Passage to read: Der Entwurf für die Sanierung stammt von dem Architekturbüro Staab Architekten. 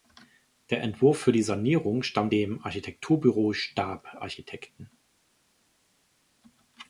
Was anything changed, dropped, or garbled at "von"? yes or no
yes